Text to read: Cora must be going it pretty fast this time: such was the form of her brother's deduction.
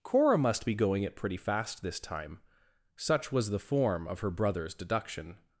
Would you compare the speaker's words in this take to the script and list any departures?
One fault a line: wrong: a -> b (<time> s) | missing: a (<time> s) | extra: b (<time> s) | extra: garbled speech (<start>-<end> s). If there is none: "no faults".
no faults